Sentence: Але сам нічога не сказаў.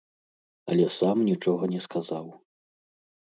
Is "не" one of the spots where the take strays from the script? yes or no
no